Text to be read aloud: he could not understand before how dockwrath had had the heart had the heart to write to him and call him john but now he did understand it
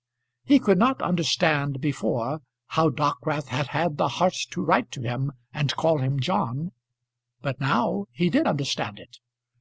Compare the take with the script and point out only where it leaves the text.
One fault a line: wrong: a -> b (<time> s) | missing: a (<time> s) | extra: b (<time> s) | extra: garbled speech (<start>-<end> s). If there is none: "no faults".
missing: had the heart (4.3 s)